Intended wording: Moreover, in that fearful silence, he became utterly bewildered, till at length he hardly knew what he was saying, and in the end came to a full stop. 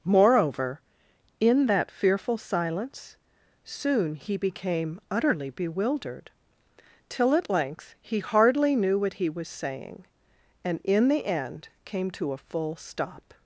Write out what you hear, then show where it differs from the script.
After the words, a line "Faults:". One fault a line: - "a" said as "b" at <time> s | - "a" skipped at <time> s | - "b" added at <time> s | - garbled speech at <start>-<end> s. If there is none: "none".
Moreover, in that fearful silence, soon he became utterly bewildered, till at length he hardly knew what he was saying, and in the end came to a full stop.
Faults:
- "soon" added at 3.6 s